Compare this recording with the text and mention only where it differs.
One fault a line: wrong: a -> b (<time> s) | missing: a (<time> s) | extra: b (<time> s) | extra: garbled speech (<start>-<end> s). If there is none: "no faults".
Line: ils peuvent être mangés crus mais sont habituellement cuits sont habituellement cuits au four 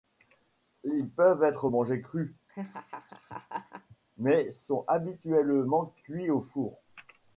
missing: sont habituellement cuits (6.3 s)